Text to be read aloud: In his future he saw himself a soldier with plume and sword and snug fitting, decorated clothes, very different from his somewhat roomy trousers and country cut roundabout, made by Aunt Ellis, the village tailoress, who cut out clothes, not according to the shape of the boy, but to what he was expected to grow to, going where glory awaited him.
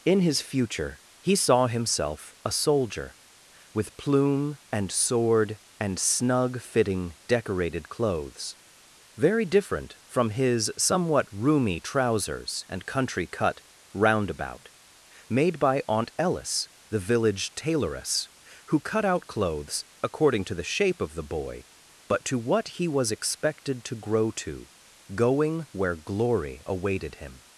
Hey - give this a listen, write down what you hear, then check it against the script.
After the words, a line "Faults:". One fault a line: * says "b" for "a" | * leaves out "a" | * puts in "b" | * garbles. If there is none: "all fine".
In his future he saw himself a soldier with plume and sword and snug fitting, decorated clothes, very different from his somewhat roomy trousers and country cut roundabout, made by Aunt Ellis, the village tailoress, who cut out clothes, according to the shape of the boy, but to what he was expected to grow to, going where glory awaited him.
Faults:
* leaves out "not"